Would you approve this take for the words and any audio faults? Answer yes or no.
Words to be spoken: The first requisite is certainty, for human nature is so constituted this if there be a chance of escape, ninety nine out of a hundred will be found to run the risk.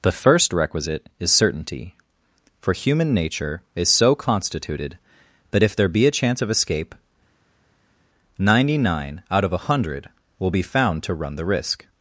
no